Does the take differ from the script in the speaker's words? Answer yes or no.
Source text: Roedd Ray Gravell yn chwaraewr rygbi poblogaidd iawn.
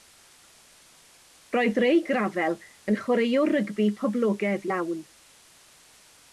no